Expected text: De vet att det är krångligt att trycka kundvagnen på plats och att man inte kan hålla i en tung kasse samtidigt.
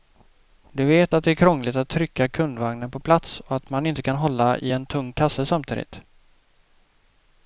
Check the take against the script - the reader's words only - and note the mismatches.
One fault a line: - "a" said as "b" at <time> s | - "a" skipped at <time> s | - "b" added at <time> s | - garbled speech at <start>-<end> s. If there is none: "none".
none